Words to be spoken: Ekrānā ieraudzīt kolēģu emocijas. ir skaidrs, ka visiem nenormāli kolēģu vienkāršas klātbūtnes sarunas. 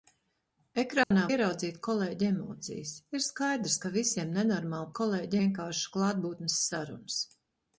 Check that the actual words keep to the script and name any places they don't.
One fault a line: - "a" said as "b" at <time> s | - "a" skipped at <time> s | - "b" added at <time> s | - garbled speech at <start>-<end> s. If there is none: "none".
none